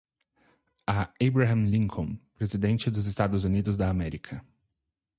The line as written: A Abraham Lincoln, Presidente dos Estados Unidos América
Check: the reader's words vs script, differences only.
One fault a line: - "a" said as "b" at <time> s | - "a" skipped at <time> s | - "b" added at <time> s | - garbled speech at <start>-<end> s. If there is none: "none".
- "da" added at 3.8 s